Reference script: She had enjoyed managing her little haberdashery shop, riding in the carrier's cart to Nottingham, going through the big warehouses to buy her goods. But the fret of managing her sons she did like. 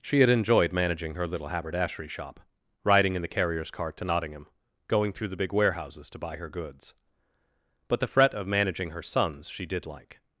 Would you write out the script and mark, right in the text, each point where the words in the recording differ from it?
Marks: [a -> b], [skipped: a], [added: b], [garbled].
She had enjoyed managing her little haberdashery shop, riding in the carrier's cart to Nottingham, going through the big warehouses to buy her goods. But the fret of managing her sons she did like.